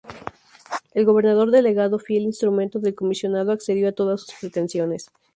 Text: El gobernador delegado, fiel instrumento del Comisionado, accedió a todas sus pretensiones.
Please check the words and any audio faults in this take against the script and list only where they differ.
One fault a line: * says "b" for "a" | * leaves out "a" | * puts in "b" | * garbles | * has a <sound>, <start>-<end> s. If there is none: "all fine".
all fine